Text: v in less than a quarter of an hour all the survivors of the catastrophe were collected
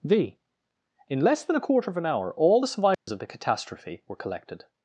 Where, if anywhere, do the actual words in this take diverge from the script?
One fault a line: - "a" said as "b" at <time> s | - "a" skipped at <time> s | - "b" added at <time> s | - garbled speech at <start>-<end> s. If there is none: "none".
none